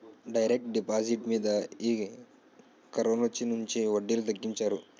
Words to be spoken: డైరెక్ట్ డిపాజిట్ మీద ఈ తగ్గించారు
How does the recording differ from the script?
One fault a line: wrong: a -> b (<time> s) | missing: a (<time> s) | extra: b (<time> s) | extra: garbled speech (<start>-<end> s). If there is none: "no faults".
extra: కరోనొచ్చినుంచి వడ్డీలు (2.9 s)